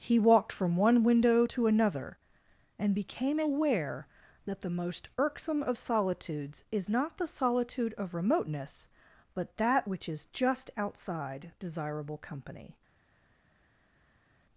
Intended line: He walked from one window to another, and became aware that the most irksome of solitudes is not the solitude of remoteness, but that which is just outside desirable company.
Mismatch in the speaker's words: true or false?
false